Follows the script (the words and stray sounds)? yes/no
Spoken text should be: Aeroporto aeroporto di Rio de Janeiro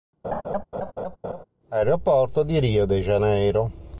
no